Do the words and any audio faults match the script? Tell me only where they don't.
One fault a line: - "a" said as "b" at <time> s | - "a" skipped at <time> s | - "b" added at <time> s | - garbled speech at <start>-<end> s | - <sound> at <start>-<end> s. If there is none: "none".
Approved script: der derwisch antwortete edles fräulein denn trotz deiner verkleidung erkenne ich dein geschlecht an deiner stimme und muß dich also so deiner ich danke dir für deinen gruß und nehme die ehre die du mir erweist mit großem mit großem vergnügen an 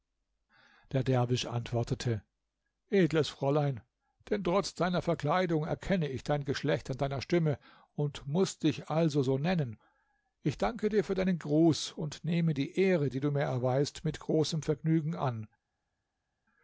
- "deiner" said as "nennen" at 9.4 s
- "mit großem" skipped at 14.6 s